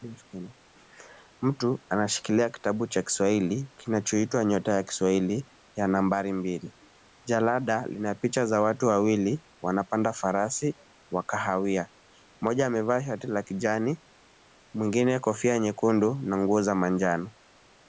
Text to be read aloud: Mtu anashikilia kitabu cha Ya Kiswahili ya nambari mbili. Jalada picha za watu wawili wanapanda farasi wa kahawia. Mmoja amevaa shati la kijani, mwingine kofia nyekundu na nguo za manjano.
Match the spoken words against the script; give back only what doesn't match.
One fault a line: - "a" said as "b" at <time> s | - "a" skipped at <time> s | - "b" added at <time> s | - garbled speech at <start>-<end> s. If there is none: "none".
- "Kiswahili kinachoitwa Nyota" added at 3.0 s
- "lina" added at 7.9 s